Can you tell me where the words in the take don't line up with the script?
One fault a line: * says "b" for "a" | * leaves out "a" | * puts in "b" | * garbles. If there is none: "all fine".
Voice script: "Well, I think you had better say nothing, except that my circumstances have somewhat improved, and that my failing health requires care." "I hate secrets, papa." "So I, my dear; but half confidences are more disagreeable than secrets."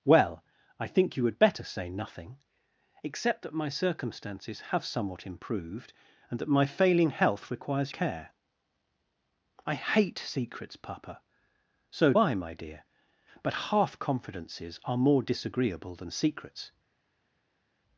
all fine